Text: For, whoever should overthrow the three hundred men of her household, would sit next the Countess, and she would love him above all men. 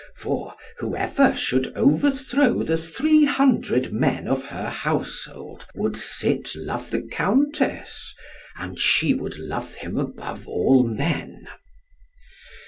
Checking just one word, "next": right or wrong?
wrong